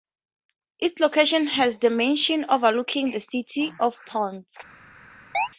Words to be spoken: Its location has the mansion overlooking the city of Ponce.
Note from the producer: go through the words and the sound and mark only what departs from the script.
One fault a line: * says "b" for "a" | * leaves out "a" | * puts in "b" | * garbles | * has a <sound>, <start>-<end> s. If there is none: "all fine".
* has a chirp, 5.3-5.5 s